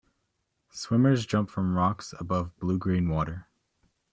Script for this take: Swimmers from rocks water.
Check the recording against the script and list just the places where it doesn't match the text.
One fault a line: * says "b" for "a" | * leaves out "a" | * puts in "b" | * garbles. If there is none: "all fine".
* puts in "jump"
* puts in "above bluegreen"